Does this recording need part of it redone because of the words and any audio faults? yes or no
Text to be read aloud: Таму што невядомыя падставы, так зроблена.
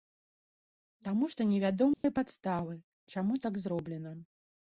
yes